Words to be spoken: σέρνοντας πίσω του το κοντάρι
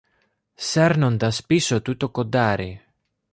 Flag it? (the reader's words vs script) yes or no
no